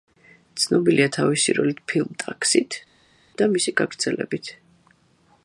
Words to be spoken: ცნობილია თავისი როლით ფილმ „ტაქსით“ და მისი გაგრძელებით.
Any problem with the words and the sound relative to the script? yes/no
no